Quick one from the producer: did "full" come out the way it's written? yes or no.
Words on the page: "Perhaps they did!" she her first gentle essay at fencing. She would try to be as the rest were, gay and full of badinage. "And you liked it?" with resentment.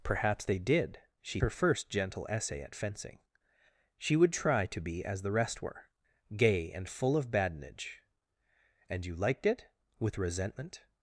yes